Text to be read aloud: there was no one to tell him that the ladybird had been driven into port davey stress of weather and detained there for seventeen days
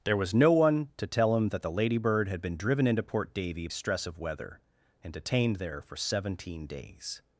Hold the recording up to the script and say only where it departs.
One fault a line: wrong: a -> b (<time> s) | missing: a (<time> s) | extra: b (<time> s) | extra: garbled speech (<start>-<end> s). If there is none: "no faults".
no faults